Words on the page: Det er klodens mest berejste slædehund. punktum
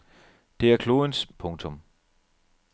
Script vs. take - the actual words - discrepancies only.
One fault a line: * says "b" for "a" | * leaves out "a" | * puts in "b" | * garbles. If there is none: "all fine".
* leaves out "mest berejste slædehund"